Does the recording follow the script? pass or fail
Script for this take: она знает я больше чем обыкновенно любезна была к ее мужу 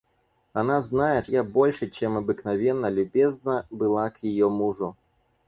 pass